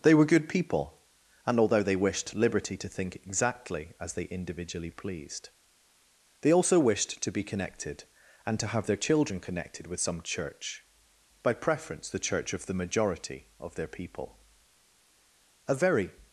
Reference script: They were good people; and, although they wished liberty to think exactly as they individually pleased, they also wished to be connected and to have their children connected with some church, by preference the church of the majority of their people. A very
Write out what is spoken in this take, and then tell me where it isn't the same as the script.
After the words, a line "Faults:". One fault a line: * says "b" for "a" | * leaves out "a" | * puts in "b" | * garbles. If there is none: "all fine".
They were good people; and, although they wished liberty to think exactly as they individually pleased, they also wished to be connected and to have their children connected with some church, by preference the church of the majority of their people. A very
Faults:
all fine